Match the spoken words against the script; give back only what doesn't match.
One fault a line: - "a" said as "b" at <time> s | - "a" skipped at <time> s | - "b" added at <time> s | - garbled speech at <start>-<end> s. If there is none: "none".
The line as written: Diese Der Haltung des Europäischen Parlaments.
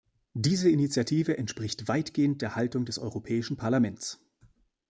- "Initiative entspricht weitgehend" added at 0.7 s